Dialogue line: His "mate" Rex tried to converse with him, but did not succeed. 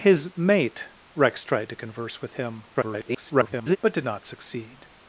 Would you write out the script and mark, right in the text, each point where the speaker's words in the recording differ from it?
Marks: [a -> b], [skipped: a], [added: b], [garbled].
His "mate" Rex tried to converse with him, [garbled] but did not succeed.